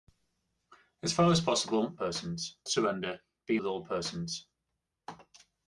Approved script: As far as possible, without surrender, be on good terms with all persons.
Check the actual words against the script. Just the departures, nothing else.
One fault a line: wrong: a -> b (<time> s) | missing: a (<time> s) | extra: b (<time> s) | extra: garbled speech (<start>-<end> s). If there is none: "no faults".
wrong: without -> persons (2.0 s)
missing: on good terms (3.6 s)